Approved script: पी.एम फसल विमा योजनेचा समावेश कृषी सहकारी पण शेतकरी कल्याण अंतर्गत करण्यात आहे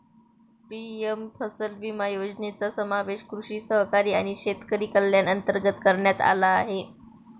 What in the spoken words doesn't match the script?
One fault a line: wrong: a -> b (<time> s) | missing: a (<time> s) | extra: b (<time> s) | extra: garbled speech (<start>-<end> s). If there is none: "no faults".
wrong: पण -> आणि (4.1 s)
extra: आला (6.2 s)